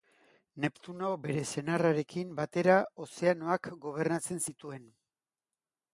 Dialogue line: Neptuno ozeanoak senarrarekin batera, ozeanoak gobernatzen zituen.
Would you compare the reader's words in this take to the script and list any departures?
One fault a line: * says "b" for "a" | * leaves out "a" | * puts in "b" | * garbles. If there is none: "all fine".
* says "bere" for "ozeanoak"